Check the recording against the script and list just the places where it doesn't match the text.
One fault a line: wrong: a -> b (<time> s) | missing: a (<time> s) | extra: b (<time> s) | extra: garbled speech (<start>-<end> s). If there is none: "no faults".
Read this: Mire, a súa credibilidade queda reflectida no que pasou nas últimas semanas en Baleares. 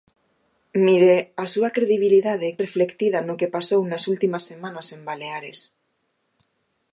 missing: queda (2.6 s)